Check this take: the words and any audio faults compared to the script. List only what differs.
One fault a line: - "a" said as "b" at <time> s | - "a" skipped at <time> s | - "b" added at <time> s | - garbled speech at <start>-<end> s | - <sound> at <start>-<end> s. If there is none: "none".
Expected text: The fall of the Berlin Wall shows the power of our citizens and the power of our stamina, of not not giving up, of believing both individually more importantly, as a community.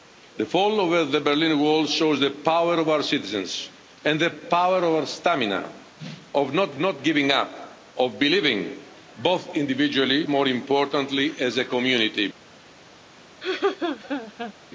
- laugh at 13.4-14.5 s